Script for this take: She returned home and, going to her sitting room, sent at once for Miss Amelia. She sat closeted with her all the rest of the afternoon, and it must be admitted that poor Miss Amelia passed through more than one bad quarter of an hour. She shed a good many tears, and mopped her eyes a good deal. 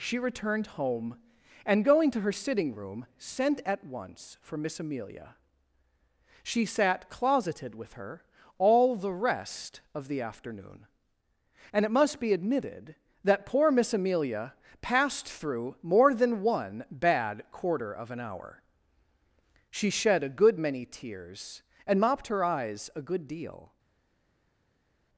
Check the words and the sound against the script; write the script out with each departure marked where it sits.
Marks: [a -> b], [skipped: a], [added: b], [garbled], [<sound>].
She returned home and, going to her sitting room, sent at once for Miss Amelia. She sat closeted with her all the rest of the afternoon, and it must be admitted that poor Miss Amelia passed through more than one bad quarter of an hour. She shed a good many tears, and mopped her eyes a good deal.